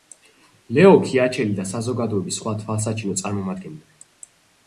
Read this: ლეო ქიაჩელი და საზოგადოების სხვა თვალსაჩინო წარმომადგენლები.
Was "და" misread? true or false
false